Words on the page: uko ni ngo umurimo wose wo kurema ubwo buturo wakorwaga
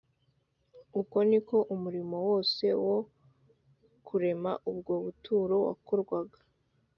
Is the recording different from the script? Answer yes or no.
yes